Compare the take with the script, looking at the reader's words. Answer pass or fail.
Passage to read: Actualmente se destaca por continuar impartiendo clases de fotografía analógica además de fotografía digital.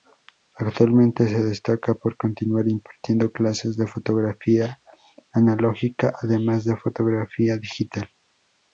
pass